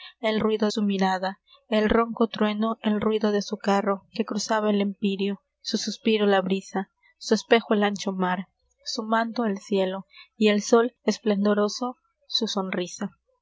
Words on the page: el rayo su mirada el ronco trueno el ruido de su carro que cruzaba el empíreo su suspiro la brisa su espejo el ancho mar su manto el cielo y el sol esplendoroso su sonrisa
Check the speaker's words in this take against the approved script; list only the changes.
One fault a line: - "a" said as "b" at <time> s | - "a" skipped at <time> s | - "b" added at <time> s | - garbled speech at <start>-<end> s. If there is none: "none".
- "rayo" said as "ruido" at 0.4 s